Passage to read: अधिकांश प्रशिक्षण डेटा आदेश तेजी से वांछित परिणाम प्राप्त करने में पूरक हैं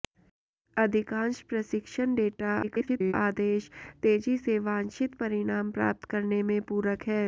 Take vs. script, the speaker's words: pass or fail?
fail